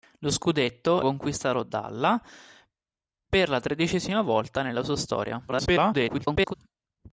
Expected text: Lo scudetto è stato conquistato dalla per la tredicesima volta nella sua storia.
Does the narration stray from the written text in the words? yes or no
yes